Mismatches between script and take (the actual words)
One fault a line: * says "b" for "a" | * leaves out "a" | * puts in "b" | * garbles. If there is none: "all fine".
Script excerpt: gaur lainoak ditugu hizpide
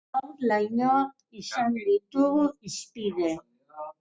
* puts in "izan"